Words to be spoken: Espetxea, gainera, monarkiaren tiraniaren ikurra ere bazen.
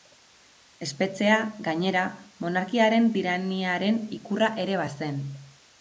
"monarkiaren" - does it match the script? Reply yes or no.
yes